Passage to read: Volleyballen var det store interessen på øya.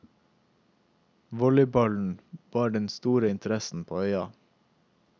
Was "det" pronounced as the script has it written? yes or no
no